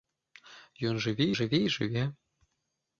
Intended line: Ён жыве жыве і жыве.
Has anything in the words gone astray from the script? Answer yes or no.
no